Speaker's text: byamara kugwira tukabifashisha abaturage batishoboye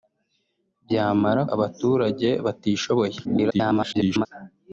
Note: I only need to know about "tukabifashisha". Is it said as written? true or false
false